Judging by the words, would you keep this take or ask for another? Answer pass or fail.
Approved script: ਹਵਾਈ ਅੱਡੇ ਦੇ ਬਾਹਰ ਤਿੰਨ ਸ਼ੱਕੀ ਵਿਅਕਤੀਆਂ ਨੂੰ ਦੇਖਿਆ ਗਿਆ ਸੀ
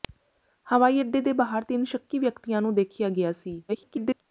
fail